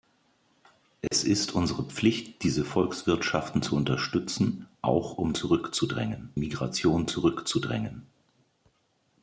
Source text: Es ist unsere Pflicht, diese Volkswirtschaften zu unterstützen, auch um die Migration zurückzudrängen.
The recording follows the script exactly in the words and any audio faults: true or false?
false